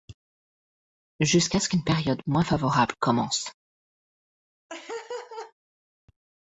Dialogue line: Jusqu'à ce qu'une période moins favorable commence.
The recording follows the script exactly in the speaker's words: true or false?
true